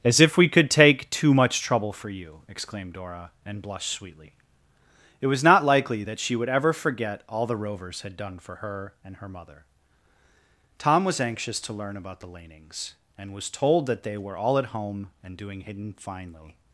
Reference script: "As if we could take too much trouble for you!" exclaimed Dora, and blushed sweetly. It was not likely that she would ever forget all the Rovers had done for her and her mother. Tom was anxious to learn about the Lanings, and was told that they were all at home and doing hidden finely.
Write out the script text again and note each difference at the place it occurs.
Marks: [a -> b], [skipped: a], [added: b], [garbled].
"As if we could take too much trouble for you!" exclaimed Dora, and blushed sweetly. It was not likely that she would ever forget all the Rovers had done for her and her mother. Tom was anxious to learn about the Lanings, and was told that they were all at home and doing hidden finely.